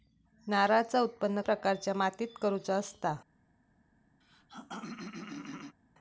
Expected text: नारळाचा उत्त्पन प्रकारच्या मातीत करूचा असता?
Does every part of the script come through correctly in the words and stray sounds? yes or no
no